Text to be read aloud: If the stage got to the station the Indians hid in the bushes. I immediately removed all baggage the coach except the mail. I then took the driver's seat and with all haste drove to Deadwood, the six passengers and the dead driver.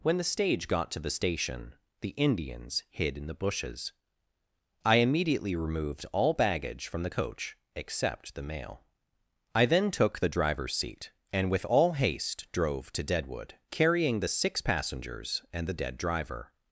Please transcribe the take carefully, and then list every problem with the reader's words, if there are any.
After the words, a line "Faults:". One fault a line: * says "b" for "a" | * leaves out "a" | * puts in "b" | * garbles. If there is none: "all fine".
When the stage got to the station the Indians hid in the bushes. I immediately removed all baggage from the coach except the mail. I then took the driver's seat and with all haste drove to Deadwood, carrying the six passengers and the dead driver.
Faults:
* says "When" for "If"
* puts in "from"
* puts in "carrying"